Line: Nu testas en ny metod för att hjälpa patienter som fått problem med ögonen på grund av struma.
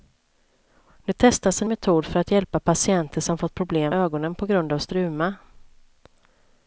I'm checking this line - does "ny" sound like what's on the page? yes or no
no